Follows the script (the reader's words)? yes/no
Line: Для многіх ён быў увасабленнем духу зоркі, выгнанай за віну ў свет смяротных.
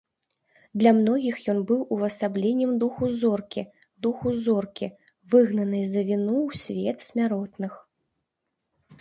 no